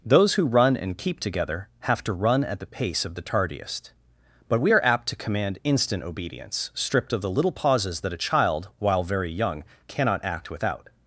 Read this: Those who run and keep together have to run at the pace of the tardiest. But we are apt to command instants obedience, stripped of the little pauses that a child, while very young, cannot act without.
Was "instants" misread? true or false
true